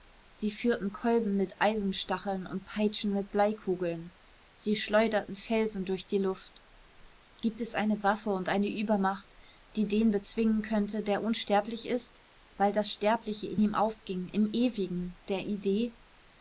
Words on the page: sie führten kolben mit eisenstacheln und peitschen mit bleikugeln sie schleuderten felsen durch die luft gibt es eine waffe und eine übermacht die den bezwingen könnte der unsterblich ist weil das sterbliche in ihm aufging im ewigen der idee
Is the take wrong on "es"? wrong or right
right